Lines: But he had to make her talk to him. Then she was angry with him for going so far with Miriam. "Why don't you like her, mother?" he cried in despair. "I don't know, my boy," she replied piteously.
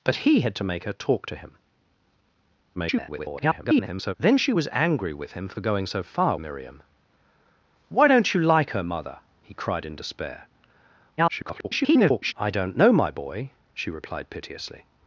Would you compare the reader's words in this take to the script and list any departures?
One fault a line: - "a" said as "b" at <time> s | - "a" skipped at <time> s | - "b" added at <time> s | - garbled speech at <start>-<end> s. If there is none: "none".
- garbled speech at 2.7-4.1 s
- "with" skipped at 6.4 s
- garbled speech at 11.2-12.3 s